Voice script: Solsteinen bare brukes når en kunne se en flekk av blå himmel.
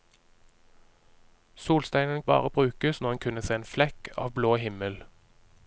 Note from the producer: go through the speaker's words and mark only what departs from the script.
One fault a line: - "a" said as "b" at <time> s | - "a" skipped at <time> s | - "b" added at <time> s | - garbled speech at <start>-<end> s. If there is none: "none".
none